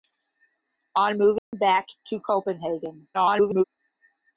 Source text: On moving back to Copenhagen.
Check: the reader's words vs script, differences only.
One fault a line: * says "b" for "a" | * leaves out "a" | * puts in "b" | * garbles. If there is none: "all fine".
* garbles